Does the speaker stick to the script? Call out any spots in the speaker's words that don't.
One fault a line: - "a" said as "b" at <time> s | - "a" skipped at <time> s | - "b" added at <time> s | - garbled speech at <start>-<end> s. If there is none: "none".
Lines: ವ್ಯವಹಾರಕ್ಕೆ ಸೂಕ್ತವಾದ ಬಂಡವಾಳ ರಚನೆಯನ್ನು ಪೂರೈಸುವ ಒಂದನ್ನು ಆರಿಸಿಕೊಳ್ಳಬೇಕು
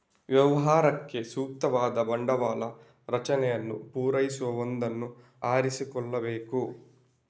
none